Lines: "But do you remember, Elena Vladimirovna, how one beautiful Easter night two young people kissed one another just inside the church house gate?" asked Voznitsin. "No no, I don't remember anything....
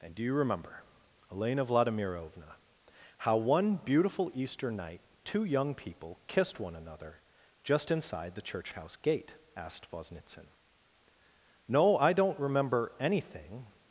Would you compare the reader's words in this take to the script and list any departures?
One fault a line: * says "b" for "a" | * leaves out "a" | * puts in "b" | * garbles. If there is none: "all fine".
* says "And" for "But"
* leaves out "no"